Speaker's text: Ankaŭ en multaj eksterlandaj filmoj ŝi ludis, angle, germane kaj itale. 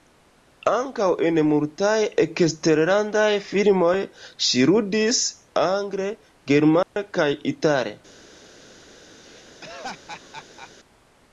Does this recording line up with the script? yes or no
yes